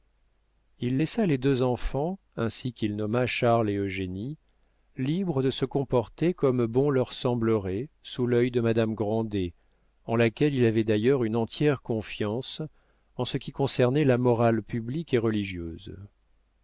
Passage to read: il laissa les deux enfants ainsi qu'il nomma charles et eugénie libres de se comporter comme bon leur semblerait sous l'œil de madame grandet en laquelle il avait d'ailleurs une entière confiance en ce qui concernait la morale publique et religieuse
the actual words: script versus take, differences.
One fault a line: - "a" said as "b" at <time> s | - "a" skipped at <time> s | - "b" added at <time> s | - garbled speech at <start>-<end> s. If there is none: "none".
none